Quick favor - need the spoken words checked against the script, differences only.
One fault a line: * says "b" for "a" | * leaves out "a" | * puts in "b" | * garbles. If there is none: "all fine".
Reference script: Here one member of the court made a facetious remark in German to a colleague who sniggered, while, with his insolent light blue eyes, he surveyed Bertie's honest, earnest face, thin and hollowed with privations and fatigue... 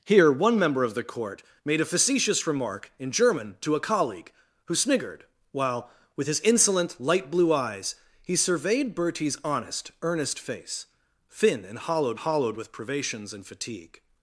* puts in "hollowed"